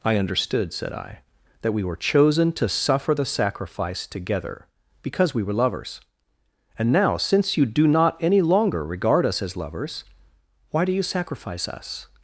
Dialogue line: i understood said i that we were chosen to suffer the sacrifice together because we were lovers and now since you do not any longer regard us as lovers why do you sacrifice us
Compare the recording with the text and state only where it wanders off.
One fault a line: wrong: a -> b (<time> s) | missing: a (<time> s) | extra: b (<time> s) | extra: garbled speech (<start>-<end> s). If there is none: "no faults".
no faults